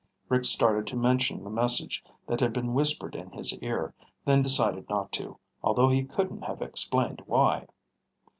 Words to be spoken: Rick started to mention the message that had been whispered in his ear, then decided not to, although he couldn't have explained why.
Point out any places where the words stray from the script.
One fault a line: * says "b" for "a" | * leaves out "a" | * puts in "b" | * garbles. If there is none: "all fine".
all fine